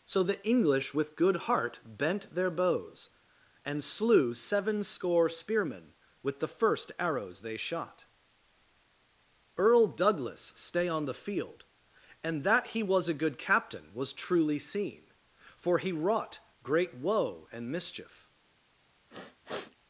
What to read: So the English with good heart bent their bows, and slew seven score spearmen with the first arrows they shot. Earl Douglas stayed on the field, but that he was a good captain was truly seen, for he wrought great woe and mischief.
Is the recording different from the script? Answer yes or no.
yes